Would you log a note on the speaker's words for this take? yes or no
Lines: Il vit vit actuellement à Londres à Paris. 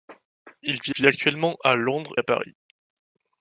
no